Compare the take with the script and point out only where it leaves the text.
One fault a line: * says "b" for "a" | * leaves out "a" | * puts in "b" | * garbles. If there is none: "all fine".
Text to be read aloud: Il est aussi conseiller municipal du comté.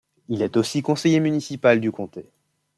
all fine